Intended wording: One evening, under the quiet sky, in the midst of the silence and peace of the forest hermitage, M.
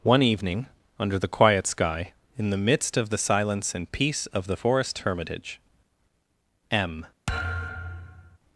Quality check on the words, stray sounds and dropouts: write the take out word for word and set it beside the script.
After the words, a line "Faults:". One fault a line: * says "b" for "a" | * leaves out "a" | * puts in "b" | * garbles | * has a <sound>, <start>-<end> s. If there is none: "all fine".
One evening, under the quiet sky, in the midst of the silence and peace of the forest hermitage, M.
Faults:
* has a thud, 7.3-8.4 s